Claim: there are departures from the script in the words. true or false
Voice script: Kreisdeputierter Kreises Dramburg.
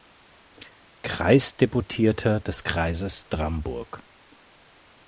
true